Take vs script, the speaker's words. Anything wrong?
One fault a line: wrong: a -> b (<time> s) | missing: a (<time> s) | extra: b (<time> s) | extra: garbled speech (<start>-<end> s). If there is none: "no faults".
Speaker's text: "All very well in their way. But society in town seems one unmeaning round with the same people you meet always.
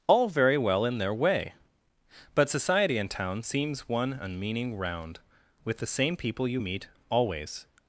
no faults